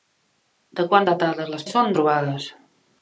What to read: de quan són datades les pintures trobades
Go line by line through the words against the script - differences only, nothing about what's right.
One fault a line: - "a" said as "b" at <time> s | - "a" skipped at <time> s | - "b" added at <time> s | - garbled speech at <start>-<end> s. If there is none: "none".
- "són" skipped at 1.1 s
- "pintures" said as "són" at 1.7 s